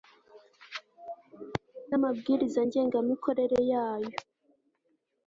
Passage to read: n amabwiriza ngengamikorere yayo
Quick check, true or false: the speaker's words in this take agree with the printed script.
true